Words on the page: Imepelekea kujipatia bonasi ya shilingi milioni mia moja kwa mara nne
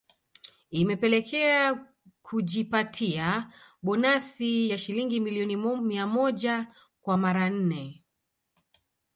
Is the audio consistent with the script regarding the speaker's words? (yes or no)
yes